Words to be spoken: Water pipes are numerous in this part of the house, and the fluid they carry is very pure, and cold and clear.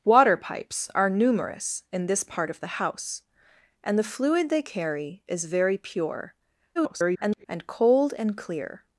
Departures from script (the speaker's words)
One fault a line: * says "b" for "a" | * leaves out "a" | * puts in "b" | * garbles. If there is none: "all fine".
* garbles